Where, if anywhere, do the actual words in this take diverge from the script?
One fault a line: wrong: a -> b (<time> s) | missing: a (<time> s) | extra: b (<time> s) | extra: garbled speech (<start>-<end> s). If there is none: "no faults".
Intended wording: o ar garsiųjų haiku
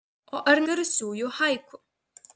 no faults